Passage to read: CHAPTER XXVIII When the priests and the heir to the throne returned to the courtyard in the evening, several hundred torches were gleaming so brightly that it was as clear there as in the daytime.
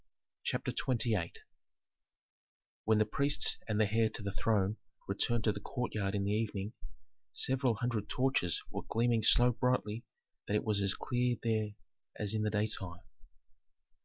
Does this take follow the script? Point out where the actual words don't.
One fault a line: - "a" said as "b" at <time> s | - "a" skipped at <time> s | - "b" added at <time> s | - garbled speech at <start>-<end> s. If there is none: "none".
none